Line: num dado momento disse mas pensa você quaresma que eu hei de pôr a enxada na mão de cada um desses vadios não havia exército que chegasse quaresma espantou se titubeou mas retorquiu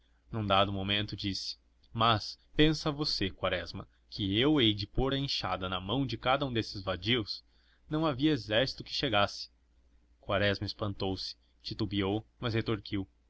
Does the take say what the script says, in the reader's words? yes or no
yes